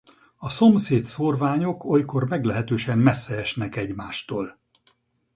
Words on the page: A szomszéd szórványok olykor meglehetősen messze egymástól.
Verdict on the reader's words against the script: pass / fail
fail